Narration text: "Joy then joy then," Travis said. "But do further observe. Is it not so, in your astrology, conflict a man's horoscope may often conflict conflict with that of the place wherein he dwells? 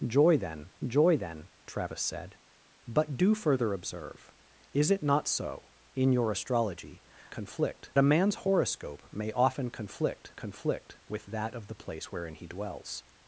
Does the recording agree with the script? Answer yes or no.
yes